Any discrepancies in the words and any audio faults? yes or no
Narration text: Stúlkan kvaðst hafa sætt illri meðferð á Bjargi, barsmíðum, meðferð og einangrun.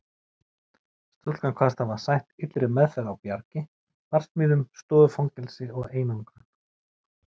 yes